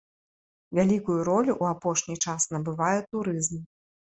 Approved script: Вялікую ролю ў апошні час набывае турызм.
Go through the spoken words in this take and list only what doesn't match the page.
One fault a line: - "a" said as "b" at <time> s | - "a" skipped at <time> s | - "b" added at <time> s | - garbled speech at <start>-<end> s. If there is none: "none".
none